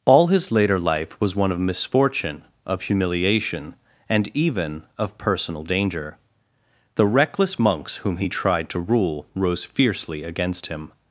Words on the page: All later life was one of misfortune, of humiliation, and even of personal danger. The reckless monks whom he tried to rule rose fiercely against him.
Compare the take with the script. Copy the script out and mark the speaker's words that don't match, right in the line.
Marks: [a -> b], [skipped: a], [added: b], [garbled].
All [added: his] later life was one of misfortune, of humiliation, and even of personal danger. The reckless monks whom he tried to rule rose fiercely against him.